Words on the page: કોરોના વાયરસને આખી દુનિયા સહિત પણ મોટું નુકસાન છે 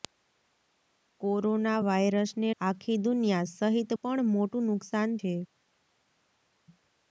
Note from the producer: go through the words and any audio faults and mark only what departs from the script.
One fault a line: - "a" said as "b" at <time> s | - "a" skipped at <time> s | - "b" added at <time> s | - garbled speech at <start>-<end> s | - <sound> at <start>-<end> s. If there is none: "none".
none